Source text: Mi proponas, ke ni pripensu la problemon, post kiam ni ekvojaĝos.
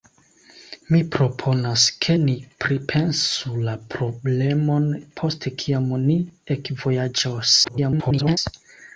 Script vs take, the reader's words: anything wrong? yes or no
yes